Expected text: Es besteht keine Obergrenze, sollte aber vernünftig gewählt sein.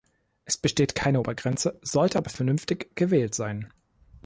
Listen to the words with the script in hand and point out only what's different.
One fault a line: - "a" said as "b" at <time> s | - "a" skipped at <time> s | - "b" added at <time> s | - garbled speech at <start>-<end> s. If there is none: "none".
none